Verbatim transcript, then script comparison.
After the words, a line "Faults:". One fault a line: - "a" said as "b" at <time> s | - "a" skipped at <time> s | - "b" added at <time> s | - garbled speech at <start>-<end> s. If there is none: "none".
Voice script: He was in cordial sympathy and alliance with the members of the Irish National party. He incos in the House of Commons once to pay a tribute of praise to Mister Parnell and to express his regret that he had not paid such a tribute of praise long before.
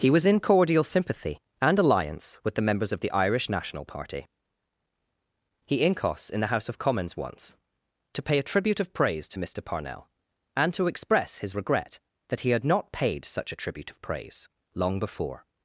He was in cordial sympathy and alliance with the members of the Irish National party. He incos in the House of Commons once to pay a tribute of praise to Mister Parnell and to express his regret that he had not paid such a tribute of praise long before.
Faults:
none